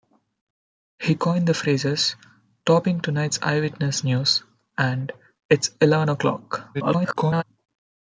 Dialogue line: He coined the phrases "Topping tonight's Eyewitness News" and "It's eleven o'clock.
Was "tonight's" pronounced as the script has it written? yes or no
yes